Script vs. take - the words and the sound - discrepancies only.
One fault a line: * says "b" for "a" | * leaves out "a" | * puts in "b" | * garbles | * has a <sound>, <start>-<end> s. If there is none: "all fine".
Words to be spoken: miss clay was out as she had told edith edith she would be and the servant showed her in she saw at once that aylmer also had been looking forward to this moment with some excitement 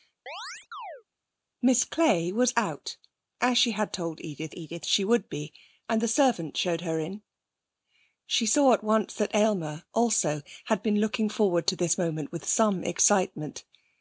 * has a chirp, 0.3-1.0 s